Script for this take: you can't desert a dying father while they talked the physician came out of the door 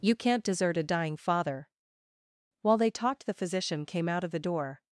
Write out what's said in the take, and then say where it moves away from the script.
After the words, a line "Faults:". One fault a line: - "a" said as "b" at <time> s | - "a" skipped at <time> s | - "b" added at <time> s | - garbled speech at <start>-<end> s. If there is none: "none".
you can't desert a dying father while they talked the physician came out of the door
Faults:
none